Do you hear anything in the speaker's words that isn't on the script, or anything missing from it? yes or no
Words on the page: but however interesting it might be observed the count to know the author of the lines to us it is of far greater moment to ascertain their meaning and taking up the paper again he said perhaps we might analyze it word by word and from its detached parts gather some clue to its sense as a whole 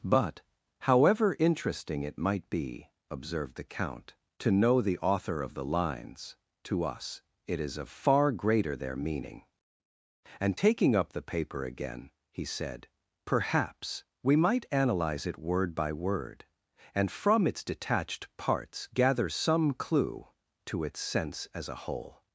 yes